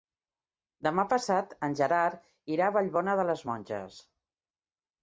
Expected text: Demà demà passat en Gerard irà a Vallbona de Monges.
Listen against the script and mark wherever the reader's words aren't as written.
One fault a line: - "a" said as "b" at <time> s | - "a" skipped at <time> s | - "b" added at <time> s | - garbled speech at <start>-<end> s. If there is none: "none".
- "demà" skipped at 1.1 s
- "les" added at 3.3 s